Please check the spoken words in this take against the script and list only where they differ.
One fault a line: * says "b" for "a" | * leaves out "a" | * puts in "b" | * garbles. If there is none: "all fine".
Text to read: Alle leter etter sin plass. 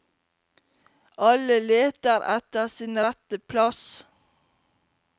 * puts in "rette"